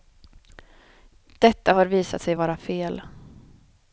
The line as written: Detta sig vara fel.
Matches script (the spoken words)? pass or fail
fail